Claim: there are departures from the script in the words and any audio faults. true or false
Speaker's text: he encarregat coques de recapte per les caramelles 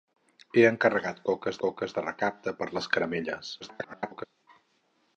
true